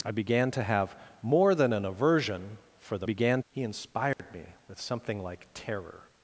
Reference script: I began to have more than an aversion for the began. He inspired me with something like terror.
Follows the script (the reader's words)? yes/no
yes